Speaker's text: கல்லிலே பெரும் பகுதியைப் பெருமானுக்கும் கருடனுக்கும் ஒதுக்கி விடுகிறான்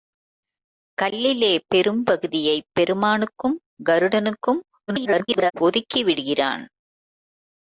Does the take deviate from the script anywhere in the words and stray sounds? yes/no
yes